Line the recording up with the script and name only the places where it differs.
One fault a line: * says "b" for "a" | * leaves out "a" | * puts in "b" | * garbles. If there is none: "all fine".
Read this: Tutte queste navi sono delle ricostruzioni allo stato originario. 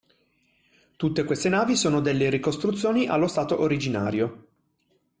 all fine